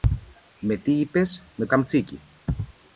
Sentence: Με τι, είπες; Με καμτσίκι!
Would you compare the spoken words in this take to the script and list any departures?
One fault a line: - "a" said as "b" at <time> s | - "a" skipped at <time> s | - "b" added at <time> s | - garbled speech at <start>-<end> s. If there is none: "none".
none